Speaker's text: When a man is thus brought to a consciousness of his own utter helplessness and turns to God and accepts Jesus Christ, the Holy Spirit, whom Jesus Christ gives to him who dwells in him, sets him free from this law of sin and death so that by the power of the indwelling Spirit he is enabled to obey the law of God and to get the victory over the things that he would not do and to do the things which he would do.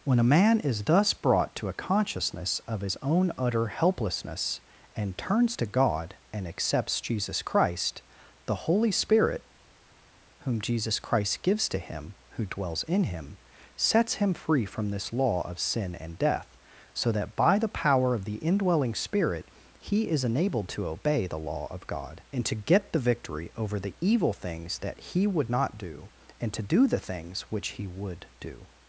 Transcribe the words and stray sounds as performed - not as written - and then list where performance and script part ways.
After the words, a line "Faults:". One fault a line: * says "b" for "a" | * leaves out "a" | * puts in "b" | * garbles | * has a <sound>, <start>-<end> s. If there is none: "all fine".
When a man is thus brought to a consciousness of his own utter helplessness and turns to God and accepts Jesus Christ, the Holy Spirit, whom Jesus Christ gives to him who dwells in him, sets him free from this law of sin and death so that by the power of the indwelling Spirit he is enabled to obey the law of God and to get the victory over the evil things that he would not do and to do the things which he would do.
Faults:
* puts in "evil"